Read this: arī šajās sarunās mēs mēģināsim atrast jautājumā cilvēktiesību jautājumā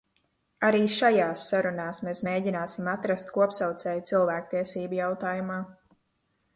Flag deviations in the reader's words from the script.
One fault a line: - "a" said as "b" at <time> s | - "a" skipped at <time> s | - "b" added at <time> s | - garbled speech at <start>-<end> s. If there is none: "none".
- "jautājumā" said as "kopsaucēju" at 3.4 s